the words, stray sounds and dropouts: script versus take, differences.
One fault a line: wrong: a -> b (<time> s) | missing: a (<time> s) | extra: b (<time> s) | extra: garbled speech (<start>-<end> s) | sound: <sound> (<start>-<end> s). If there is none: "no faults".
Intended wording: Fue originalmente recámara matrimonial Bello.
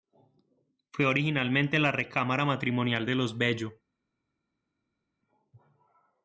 extra: la (1.8 s)
extra: de los (3.0 s)